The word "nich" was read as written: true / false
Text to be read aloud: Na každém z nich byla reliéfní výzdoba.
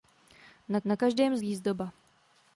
false